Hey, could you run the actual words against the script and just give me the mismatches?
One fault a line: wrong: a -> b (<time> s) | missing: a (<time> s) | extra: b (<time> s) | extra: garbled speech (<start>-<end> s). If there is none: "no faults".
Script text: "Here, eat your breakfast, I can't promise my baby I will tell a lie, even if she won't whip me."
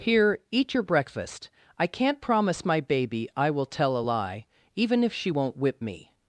no faults